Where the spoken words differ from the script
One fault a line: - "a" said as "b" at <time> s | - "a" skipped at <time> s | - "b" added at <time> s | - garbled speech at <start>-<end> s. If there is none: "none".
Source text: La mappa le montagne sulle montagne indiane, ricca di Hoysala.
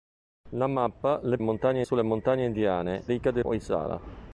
none